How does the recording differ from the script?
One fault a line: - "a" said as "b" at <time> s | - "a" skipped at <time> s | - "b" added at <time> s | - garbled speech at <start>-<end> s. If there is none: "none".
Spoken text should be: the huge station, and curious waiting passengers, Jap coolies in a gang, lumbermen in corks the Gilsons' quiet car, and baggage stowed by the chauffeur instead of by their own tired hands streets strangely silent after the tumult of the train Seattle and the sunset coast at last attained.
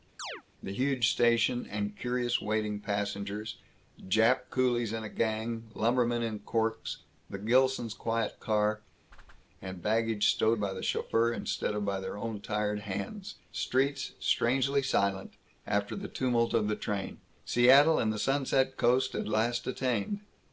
none